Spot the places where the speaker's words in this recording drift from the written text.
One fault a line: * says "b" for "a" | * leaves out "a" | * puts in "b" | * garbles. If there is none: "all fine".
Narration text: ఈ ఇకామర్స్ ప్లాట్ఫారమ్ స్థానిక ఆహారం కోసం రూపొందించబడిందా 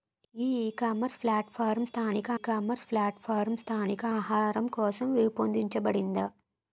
* puts in "ఇకామర్స్ ప్లాట్ఫారమ్ స్థానిక"